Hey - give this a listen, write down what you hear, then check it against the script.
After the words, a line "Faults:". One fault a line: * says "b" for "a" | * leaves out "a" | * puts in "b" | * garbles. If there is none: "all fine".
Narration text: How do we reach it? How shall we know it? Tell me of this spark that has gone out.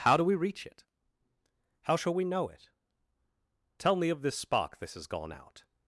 How do we reach it? How shall we know it? Tell me of this spark this has gone out.
Faults:
* says "this" for "that"